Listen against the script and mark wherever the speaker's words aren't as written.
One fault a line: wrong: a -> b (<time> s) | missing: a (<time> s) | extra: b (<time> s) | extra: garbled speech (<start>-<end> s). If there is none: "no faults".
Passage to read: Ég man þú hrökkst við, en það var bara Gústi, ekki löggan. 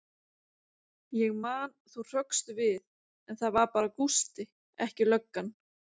no faults